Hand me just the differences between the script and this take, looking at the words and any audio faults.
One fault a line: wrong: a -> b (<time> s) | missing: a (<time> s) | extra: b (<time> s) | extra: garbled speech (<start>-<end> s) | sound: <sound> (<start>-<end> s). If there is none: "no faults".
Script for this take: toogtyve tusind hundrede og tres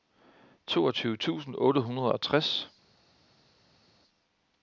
extra: otte (1.6 s)